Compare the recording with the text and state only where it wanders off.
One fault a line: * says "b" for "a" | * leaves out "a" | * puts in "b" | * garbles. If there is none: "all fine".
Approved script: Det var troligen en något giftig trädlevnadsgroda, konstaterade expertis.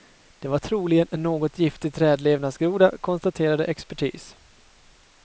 all fine